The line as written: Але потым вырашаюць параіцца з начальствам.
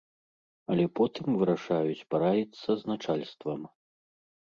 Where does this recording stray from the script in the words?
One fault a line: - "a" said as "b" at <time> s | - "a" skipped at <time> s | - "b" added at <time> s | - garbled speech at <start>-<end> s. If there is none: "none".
none